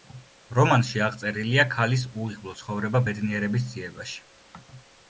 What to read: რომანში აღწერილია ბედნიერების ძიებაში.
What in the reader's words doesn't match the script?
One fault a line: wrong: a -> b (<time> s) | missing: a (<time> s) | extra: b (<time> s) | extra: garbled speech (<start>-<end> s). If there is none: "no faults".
extra: ქალის უიღბლო ცხოვრება (1.8 s)